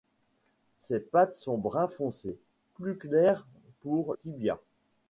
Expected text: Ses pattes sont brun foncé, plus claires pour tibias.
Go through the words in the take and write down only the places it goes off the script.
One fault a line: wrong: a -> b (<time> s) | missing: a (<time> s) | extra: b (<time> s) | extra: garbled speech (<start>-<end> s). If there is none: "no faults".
no faults